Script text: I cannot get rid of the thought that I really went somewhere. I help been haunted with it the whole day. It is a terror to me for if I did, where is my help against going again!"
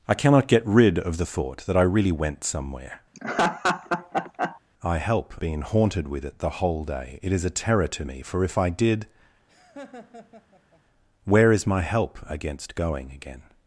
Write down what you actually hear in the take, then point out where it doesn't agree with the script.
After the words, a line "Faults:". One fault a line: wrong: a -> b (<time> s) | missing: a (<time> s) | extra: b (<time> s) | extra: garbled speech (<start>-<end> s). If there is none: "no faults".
I cannot get rid of the thought that I really went somewhere. I help been haunted with it the whole day. It is a terror to me for if I did, where is my help against going again!"
Faults:
no faults